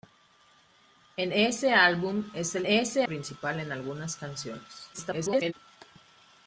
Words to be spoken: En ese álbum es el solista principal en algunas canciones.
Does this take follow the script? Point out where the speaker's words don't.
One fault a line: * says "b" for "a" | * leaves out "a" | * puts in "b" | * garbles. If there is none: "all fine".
* says "ese" for "solista"
* garbles